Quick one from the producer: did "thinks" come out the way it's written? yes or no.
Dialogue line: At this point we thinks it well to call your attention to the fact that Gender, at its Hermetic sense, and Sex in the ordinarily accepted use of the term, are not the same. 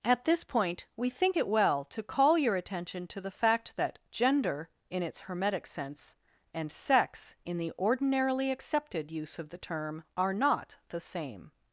no